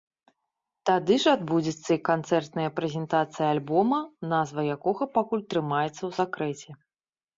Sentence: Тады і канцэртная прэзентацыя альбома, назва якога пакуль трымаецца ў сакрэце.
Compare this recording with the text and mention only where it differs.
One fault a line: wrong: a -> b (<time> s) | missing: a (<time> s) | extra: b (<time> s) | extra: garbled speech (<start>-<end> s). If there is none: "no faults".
extra: ж адбудзецца (1.2 s)